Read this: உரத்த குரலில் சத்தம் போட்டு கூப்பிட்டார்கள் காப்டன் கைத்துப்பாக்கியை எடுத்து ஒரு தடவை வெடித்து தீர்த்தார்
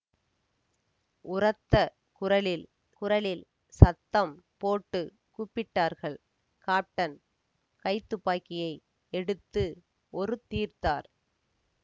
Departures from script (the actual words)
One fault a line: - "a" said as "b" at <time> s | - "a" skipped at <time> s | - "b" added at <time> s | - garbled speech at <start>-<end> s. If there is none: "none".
- "குரலில்" added at 3.0 s
- "தடவை வெடித்து" skipped at 10.4 s